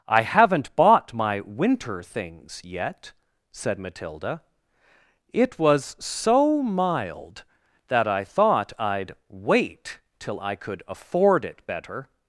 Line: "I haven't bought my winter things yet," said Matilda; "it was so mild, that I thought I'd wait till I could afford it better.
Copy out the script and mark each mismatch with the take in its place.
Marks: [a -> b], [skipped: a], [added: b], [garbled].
"I haven't bought my winter things yet," said Matilda; "it was so mild, that I thought I'd wait till I could afford it better.